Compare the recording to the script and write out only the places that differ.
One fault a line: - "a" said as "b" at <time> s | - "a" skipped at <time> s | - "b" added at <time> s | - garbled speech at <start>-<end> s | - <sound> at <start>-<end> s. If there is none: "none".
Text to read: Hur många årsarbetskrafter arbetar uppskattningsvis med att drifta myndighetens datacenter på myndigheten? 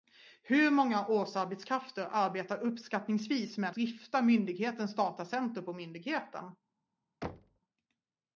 - "att" skipped at 3.8 s
- thud at 7.2-7.6 s